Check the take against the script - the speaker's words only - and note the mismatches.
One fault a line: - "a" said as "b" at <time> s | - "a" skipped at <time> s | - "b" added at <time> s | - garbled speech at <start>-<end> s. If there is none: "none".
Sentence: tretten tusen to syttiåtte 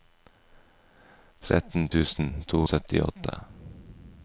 none